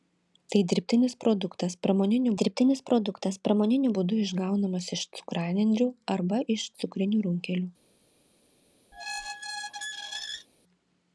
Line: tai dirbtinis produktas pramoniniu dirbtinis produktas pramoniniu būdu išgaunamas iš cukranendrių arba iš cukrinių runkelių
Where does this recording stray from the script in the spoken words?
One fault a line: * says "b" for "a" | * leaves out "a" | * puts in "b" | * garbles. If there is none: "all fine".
all fine